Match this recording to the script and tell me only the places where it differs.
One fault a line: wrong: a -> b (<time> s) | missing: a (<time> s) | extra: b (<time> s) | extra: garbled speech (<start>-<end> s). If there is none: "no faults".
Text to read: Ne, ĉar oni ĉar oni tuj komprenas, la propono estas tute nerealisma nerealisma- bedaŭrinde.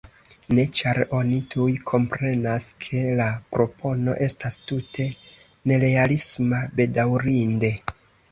missing: ĉar oni (1.4 s)
extra: ke (2.9 s)
missing: nerealisma (6.6 s)